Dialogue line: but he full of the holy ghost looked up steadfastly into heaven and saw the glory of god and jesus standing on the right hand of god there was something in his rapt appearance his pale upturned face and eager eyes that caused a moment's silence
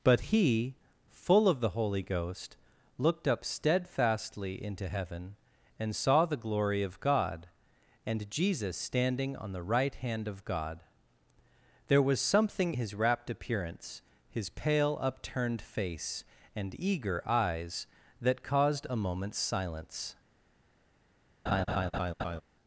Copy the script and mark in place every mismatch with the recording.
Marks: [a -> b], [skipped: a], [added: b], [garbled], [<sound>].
but he full of the holy ghost looked up steadfastly into heaven and saw the glory of god and jesus standing on the right hand of god there was something [skipped: in] his rapt appearance his pale upturned face and eager eyes that caused a moment's silence [laugh]